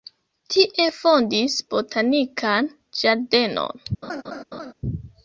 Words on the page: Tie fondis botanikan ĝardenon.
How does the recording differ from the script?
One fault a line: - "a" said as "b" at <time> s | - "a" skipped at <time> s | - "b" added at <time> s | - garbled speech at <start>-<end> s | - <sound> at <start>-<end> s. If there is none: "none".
- laugh at 4.0-4.7 s